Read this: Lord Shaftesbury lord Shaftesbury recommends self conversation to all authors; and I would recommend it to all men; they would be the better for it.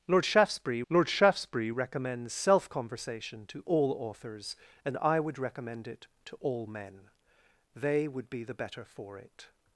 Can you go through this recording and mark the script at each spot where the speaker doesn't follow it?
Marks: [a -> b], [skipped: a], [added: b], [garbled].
Lord Shaftesbury lord Shaftesbury recommends self conversation to all authors; and I would recommend it to all men; they would be the better for it.